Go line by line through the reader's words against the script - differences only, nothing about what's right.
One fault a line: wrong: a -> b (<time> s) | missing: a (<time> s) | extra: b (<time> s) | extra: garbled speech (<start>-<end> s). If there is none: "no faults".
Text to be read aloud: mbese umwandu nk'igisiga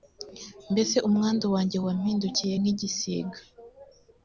extra: wanjye wampindukiye (1.5 s)